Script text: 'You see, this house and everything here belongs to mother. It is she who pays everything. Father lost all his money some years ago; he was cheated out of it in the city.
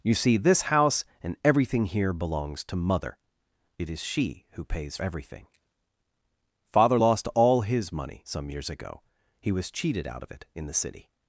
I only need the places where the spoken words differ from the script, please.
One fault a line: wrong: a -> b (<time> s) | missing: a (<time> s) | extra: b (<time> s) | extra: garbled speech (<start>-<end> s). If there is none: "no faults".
no faults